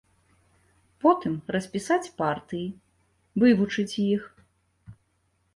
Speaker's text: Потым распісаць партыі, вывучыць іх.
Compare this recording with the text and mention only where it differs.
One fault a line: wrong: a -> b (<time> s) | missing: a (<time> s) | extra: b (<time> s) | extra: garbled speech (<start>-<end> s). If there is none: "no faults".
no faults